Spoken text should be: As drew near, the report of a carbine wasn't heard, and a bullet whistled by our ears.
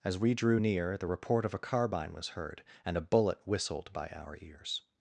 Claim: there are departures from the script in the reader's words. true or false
true